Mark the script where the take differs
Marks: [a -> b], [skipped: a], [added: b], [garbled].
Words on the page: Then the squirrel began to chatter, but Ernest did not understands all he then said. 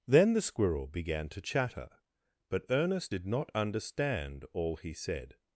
Then the squirrel began to chatter, but Ernest did not [understands -> understand] all he [skipped: then] said.